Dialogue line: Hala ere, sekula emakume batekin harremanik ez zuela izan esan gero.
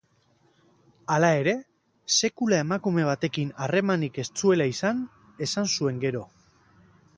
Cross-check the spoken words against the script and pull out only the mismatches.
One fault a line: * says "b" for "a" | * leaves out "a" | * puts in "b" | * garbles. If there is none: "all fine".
* puts in "zuen"